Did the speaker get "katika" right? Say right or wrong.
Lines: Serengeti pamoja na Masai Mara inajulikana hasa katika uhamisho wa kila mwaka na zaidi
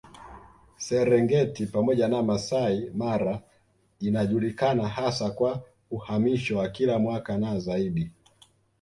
wrong